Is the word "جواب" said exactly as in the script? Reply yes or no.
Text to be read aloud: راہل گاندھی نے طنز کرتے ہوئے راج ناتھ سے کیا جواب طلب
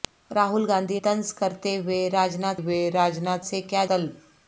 no